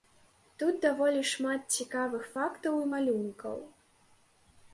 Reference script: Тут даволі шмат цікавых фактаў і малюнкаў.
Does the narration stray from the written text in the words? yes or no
no